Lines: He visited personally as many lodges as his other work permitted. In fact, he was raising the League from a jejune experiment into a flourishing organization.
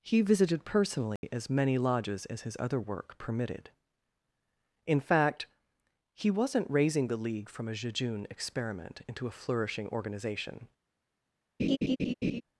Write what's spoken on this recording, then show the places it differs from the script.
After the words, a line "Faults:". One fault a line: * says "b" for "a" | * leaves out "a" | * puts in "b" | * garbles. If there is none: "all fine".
He visited personally as many lodges as his other work permitted. In fact, he wasn't raising the League from a jejune experiment into a flourishing organization.
Faults:
* says "wasn't" for "was"